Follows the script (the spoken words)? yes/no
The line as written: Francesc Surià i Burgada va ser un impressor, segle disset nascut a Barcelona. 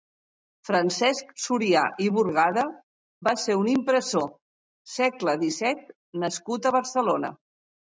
yes